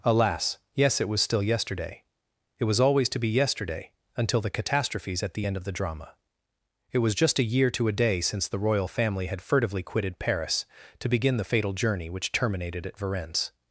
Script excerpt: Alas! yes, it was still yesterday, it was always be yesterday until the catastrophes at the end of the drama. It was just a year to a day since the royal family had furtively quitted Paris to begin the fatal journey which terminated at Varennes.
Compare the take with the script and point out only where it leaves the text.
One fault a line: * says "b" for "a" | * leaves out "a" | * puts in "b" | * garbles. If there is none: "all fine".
* puts in "to"